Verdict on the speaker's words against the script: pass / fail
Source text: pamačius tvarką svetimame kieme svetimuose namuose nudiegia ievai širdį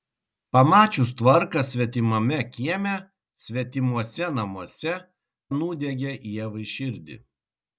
pass